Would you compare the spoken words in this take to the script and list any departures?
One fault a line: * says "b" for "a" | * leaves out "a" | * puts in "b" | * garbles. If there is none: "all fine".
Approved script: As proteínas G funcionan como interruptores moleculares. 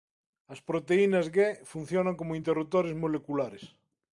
all fine